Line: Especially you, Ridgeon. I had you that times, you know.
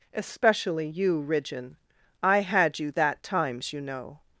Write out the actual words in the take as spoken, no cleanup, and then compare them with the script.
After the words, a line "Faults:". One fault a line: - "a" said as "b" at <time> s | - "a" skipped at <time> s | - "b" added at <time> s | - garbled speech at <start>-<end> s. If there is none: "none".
Especially you, Ridgeon. I had you that times, you know.
Faults:
none